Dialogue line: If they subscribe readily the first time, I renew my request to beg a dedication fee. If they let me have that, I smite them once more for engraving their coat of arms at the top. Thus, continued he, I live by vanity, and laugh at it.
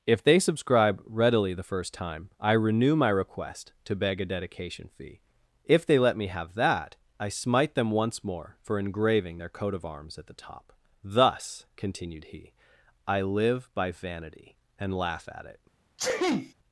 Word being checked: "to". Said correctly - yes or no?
yes